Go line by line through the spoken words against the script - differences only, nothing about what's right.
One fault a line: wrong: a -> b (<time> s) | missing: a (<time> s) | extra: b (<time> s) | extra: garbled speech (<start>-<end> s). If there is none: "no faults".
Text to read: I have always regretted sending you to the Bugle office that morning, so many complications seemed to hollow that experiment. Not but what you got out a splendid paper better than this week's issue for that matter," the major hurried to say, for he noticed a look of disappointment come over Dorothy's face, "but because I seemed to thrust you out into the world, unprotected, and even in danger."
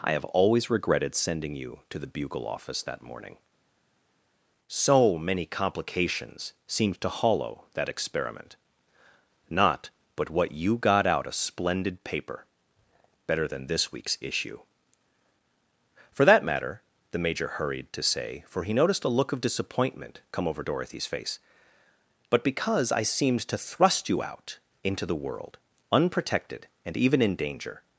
no faults